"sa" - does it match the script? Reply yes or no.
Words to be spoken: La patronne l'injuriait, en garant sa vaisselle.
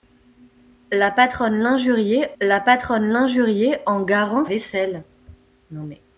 no